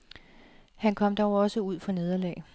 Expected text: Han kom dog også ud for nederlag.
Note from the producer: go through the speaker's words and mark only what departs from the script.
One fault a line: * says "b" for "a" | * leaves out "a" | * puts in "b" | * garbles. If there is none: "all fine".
all fine